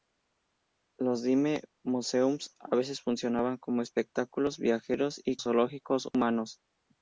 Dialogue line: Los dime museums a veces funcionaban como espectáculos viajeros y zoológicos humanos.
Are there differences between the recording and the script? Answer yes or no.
no